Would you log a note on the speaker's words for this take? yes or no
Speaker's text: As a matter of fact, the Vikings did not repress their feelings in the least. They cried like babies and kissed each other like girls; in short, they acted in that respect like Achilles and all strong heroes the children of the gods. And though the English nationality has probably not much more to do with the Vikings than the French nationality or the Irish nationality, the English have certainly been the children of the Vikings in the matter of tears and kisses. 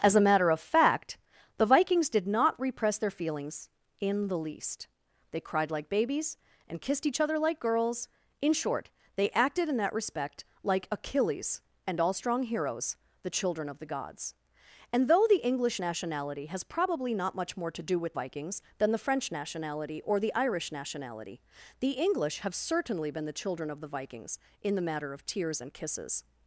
yes